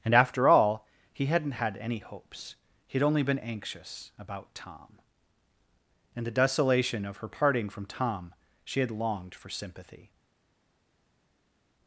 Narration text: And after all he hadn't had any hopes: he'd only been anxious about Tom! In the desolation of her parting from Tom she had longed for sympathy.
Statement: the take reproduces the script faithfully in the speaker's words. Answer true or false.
true